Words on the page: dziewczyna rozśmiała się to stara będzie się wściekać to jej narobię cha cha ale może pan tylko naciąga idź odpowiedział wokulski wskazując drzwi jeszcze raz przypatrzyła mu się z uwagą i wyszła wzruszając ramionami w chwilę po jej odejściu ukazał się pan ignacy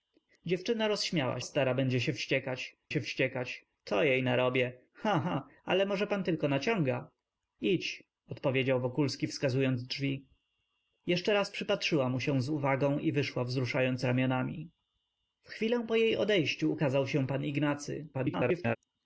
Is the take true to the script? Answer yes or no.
no